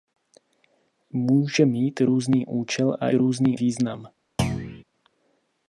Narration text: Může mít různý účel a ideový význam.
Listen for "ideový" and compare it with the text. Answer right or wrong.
wrong